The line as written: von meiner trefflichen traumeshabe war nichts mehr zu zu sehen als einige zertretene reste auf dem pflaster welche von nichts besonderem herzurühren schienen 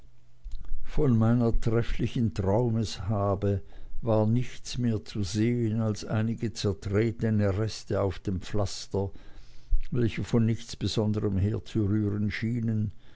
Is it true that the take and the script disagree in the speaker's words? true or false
true